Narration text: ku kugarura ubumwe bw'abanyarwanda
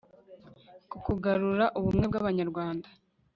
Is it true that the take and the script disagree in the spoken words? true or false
false